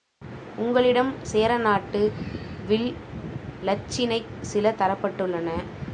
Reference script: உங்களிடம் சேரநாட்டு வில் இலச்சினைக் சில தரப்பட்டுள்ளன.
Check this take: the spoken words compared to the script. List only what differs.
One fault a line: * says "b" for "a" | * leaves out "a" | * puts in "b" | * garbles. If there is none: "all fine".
all fine